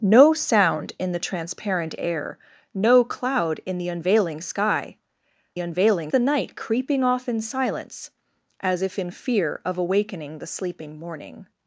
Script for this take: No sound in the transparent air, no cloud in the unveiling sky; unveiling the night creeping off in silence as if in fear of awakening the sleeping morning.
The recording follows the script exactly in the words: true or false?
true